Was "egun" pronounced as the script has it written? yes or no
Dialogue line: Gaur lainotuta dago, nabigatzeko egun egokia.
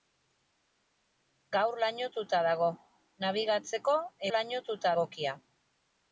no